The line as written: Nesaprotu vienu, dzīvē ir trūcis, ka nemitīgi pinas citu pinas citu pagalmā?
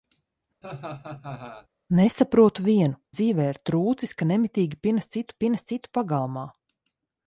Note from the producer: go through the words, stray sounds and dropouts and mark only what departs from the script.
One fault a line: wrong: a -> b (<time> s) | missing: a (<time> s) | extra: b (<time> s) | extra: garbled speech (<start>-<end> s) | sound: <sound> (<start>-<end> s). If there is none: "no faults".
sound: laugh (0.6-1.7 s)